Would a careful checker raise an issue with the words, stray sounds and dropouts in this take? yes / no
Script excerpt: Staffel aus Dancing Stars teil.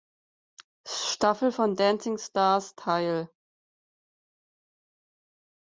yes